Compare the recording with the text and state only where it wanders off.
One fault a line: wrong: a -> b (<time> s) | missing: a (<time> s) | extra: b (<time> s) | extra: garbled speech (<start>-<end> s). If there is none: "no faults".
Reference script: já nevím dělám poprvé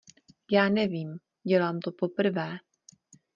extra: to (1.8 s)